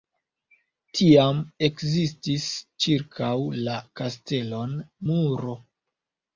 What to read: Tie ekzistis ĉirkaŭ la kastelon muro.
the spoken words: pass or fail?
fail